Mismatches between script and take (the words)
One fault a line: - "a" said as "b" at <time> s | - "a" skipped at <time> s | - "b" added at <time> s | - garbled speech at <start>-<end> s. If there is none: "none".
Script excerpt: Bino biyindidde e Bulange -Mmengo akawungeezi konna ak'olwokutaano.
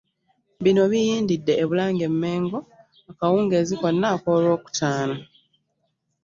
none